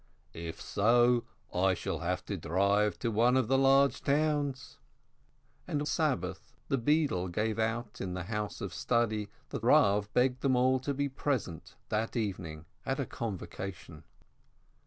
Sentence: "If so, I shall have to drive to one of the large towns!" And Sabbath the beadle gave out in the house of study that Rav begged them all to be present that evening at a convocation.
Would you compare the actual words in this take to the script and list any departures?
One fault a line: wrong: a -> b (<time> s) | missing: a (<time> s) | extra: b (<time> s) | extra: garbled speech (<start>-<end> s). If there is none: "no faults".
no faults